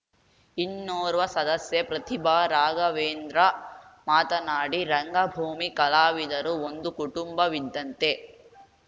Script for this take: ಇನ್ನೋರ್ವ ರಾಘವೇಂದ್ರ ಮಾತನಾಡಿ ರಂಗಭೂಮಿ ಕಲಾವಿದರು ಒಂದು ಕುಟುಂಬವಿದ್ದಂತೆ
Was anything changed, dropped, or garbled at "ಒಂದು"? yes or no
no